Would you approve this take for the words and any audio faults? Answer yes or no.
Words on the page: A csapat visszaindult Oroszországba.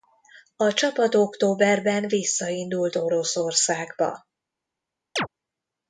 no